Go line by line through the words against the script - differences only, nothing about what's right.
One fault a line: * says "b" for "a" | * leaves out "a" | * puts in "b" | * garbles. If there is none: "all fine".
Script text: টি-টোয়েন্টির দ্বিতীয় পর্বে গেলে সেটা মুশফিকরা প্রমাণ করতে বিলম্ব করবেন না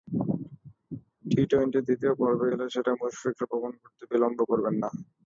all fine